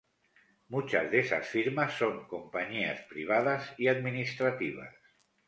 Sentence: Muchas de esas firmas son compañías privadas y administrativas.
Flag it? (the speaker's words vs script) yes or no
no